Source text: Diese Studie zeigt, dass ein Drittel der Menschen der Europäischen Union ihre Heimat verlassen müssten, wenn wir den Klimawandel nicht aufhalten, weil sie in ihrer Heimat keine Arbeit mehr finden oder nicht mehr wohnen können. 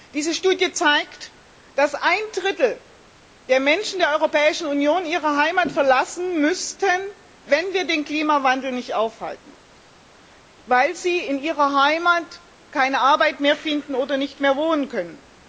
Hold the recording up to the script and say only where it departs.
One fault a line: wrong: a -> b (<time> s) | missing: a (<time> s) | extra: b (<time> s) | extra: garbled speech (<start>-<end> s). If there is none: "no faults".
no faults